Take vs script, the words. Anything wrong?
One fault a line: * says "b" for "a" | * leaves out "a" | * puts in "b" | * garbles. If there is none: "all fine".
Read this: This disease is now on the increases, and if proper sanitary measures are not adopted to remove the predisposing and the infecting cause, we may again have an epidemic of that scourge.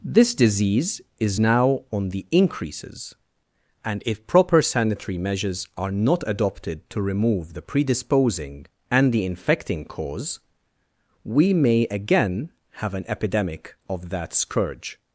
all fine